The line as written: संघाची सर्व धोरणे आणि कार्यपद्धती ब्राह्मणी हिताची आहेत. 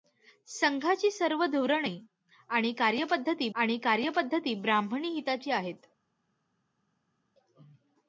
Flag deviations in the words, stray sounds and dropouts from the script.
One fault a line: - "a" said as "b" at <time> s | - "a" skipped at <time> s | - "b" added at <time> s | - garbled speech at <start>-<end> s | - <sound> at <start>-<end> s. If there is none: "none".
- "आणि कार्यपद्धती" added at 3.5 s